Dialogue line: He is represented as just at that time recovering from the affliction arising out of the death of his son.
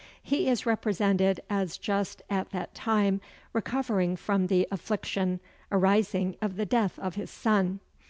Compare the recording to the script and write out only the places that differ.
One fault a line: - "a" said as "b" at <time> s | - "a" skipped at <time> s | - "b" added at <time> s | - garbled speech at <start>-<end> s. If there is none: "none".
- "out" skipped at 6.4 s